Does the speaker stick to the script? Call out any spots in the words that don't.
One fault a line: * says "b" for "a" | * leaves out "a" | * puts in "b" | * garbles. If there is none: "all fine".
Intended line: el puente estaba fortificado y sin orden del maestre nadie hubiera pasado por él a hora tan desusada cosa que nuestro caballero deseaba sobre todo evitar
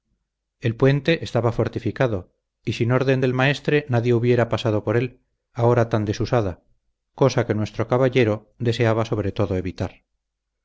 all fine